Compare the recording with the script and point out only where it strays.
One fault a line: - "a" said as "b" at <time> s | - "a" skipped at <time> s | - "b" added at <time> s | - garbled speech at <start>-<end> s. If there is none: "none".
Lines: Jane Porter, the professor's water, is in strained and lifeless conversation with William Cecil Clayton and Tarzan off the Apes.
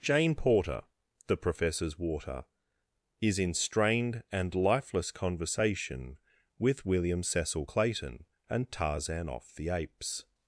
none